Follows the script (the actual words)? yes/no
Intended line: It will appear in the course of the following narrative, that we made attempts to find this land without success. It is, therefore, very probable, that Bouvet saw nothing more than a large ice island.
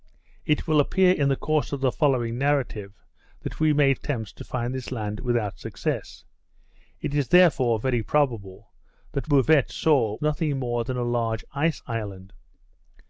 yes